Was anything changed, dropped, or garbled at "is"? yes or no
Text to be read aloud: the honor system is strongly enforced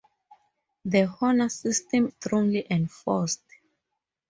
yes